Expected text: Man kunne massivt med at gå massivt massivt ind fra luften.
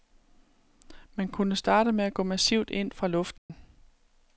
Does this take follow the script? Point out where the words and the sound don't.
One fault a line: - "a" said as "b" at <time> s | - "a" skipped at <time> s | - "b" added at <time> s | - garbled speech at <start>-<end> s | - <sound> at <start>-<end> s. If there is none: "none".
- "massivt" said as "starte" at 1.6 s
- "massivt" skipped at 2.7 s
- dropout at 3.4-3.5 s